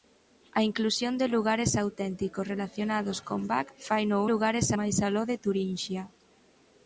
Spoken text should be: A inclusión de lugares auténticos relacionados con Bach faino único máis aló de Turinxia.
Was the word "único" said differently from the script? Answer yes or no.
yes